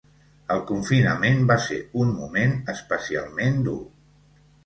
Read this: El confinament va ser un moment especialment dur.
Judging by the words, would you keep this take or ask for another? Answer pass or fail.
pass